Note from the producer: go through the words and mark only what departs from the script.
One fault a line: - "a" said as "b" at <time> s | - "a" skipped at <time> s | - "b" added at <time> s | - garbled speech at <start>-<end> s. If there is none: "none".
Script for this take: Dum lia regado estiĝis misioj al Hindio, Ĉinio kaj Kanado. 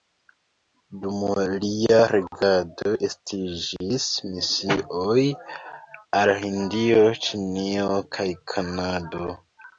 none